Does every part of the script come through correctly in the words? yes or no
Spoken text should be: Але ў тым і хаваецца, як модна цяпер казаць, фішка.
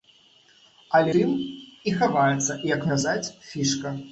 no